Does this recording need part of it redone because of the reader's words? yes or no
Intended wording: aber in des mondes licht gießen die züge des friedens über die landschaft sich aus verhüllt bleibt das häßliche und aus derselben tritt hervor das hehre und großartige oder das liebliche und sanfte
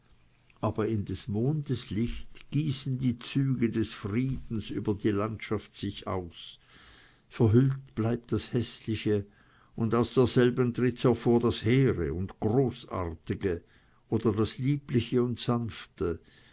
no